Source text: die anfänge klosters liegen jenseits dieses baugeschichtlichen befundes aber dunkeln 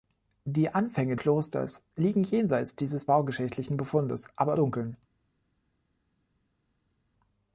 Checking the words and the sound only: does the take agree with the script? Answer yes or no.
yes